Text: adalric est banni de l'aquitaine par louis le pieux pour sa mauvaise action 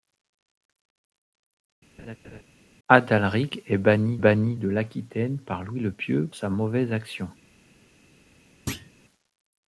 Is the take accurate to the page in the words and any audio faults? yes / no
no